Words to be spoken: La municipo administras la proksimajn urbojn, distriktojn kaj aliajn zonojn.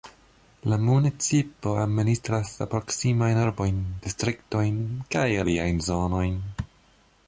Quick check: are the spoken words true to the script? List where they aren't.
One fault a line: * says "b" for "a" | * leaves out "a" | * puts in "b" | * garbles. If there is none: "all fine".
all fine